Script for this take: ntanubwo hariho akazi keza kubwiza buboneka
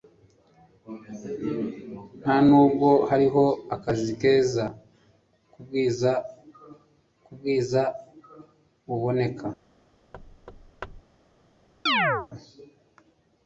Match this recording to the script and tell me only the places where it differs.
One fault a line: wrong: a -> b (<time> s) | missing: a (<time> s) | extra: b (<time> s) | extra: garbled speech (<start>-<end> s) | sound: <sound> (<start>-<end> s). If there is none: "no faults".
extra: kubwiza (7.2 s)
sound: thud (10.1-11.0 s)
sound: chirp (11.9-12.3 s)